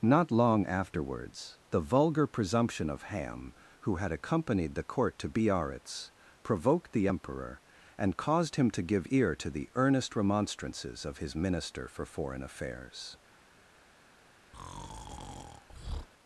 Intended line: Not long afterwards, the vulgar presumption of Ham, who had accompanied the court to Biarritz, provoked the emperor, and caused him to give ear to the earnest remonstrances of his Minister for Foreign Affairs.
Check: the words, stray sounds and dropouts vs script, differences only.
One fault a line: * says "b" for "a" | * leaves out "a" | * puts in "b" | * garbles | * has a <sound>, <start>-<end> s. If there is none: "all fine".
* has a breath, 14.5-16.1 s